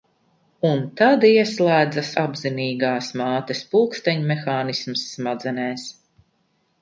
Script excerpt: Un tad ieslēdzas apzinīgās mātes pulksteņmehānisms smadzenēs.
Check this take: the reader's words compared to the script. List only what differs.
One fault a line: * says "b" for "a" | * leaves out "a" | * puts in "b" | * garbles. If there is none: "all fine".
all fine